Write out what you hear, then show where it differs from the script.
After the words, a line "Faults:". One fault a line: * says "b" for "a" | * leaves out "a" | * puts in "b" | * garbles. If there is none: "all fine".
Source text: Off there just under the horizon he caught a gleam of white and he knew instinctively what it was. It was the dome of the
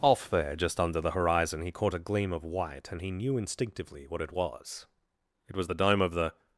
Off there just under the horizon he caught a gleam of white and he knew instinctively what it was. It was the dome of the
Faults:
all fine